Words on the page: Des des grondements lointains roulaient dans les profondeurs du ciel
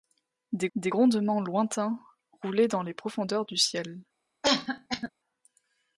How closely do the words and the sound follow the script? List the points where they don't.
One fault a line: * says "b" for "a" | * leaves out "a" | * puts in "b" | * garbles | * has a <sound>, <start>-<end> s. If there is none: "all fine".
* has a cough, 4.4-5.1 s